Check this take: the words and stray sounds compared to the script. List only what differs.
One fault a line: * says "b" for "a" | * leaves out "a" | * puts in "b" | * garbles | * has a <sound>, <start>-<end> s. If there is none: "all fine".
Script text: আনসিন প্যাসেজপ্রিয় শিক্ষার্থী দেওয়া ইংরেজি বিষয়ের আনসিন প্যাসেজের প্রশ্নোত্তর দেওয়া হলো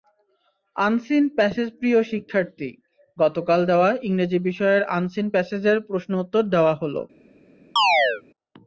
* puts in "গতকাল"
* has a chirp, 7.8-8.2 s